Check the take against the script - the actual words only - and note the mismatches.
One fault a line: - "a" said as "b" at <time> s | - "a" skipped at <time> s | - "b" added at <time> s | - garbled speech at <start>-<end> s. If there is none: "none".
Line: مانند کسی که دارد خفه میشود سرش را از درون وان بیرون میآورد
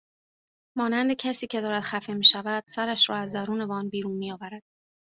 none